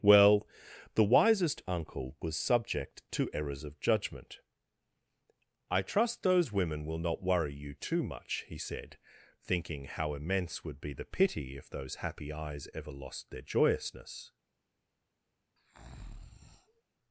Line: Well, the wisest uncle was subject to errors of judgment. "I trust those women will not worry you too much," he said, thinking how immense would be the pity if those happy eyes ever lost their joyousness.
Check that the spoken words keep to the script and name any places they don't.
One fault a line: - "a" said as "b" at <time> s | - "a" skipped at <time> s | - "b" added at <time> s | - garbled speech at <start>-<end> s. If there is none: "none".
none